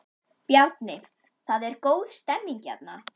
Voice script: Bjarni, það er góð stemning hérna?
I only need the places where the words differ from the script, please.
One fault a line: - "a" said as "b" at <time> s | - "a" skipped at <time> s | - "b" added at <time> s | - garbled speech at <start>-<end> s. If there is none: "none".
none